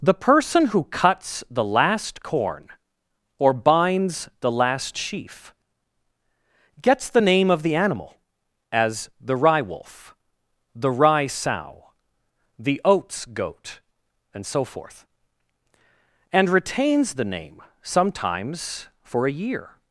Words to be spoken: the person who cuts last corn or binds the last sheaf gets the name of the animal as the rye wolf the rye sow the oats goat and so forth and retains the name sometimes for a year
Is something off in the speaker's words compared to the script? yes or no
yes